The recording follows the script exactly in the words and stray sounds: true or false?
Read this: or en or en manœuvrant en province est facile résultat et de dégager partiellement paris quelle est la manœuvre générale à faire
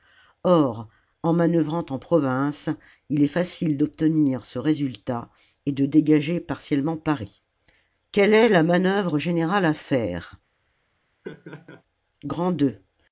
false